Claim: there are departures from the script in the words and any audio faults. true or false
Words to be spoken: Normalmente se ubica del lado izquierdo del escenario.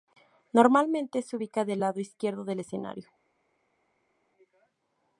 false